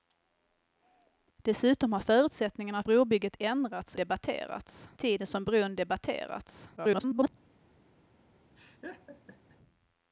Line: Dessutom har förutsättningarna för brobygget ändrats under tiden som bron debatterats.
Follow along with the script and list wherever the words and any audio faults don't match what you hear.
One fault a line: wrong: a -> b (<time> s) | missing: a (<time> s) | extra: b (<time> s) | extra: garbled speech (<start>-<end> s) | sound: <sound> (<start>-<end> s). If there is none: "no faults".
missing: för (2.8 s)
wrong: under -> debatterats (3.9 s)
extra: garbled speech (6.8-7.3 s)
sound: laugh (8.6-9.6 s)